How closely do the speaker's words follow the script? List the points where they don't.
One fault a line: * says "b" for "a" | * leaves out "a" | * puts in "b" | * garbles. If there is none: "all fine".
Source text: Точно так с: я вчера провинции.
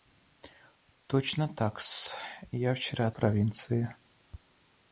all fine